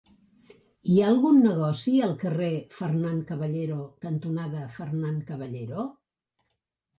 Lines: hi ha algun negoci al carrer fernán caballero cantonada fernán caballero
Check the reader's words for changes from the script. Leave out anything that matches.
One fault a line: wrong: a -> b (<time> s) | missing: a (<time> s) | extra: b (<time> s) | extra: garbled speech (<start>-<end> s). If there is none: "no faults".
no faults